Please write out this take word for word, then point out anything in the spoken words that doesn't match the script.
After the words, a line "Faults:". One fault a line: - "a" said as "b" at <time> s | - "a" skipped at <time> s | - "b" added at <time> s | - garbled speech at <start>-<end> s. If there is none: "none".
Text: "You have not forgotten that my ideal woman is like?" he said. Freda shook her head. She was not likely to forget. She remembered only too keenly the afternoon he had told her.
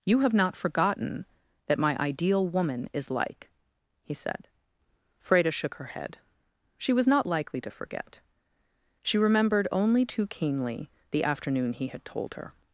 "You have not forgotten that my ideal woman is like?" he said. Freda shook her head. She was not likely to forget. She remembered only too keenly the afternoon he had told her.
Faults:
none